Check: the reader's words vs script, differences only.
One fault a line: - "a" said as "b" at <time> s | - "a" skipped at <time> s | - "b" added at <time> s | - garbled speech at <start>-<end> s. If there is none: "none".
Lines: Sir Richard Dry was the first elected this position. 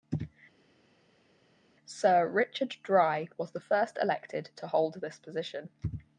- "to hold" added at 4.5 s